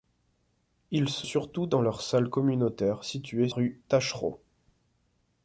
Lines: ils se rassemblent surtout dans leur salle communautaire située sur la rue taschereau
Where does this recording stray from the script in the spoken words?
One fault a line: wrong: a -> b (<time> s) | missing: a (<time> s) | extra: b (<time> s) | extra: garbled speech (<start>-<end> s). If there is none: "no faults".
missing: rassemblent (1.3 s)
missing: sur la (3.5 s)